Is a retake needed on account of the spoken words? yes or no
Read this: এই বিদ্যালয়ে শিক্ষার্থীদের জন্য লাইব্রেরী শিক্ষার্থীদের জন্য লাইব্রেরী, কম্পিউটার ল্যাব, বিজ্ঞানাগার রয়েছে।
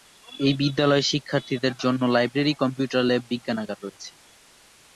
yes